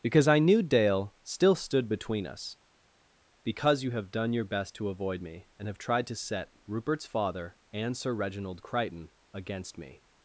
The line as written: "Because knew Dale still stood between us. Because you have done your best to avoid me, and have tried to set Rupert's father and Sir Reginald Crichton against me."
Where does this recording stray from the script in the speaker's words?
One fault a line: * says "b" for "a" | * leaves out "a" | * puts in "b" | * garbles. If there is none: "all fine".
* puts in "I"